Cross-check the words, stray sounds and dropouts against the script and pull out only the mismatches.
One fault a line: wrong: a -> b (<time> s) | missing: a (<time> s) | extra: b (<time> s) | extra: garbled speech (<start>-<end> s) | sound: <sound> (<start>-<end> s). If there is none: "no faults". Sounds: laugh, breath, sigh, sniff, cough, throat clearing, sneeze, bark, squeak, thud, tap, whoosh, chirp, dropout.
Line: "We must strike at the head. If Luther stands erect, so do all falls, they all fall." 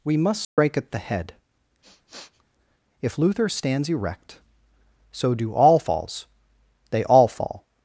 sound: dropout (0.4-0.6 s)
sound: sniff (1.8-2.4 s)